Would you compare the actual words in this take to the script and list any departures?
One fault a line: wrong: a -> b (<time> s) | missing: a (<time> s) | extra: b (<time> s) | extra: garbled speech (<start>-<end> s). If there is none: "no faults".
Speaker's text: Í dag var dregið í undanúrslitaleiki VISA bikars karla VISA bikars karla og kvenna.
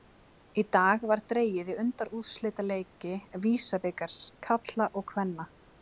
missing: VISA bikars karla (4.9 s)